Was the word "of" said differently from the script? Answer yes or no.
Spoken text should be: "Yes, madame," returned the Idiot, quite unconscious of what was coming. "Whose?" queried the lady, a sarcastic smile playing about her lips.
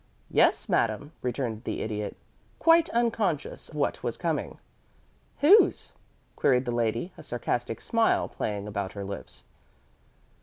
yes